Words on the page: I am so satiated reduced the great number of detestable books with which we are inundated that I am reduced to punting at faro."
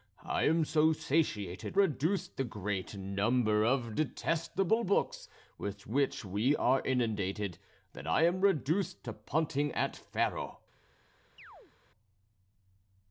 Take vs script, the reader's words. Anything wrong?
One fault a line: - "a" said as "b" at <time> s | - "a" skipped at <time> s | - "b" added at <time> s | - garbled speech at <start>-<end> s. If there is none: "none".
none